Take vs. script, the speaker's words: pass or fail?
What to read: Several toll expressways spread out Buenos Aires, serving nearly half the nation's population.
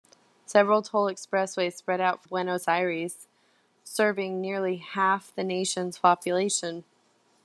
pass